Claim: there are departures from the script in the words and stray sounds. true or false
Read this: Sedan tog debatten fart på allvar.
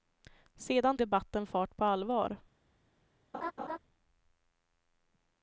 true